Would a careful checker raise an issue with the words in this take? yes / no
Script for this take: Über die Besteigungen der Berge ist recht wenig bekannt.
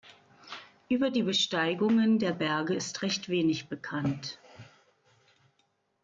no